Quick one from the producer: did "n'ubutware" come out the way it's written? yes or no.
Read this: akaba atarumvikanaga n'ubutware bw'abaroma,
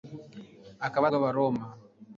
no